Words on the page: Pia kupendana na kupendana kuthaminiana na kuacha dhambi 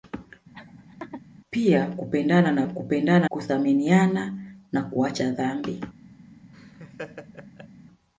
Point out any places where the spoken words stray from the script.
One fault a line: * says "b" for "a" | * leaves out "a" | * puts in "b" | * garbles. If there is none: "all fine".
all fine